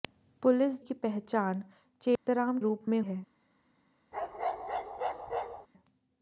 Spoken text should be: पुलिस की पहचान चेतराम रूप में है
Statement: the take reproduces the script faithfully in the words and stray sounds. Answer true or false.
false